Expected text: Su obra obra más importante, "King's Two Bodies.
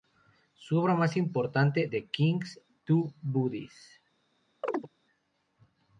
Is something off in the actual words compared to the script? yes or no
yes